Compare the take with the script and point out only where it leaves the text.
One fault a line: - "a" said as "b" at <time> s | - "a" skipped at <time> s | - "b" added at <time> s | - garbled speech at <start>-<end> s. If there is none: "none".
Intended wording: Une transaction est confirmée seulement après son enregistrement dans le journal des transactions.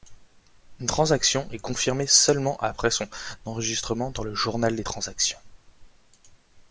none